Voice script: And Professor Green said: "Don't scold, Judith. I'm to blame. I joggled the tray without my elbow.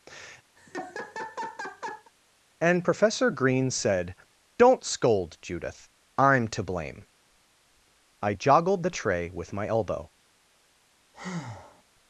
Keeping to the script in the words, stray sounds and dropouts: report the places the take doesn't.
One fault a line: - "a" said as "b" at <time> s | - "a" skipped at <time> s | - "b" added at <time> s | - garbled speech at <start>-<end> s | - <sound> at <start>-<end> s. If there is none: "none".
- laugh at 0.6-2.1 s
- "without" said as "with" at 9.3 s
- breath at 11.1-11.8 s